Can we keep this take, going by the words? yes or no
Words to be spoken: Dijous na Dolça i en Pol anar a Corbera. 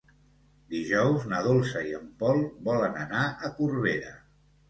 no